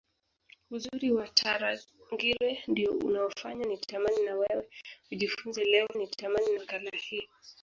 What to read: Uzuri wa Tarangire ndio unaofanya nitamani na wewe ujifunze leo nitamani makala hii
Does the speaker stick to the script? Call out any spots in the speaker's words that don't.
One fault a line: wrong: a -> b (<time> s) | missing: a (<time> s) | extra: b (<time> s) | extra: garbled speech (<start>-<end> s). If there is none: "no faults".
no faults